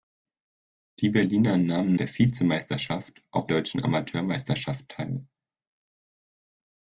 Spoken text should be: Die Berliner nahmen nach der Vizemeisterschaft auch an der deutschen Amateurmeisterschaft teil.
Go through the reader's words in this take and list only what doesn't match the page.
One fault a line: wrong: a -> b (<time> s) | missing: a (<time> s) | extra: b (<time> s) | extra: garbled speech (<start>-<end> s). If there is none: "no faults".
missing: nach (1.9 s)
missing: an der (3.5 s)